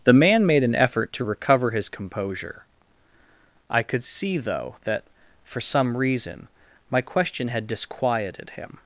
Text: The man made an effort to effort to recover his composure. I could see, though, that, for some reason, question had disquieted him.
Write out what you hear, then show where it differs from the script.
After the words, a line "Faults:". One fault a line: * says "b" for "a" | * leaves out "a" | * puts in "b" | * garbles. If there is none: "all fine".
The man made an effort to recover his composure. I could see, though, that, for some reason, my question had disquieted him.
Faults:
* leaves out "effort to"
* puts in "my"